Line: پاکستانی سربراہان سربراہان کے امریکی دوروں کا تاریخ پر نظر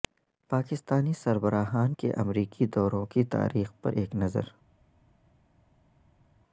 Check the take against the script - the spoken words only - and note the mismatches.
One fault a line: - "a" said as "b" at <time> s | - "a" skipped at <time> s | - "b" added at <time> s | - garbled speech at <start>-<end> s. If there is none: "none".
- "سربراہان" skipped at 1.9 s
- "کا" said as "کی" at 3.1 s
- "ایک" added at 3.9 s